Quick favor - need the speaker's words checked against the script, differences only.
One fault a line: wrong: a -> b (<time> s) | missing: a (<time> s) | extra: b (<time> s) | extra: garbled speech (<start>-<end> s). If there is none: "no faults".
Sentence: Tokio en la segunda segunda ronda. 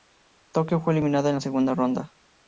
extra: fue eliminada (0.8 s)
missing: segunda (1.7 s)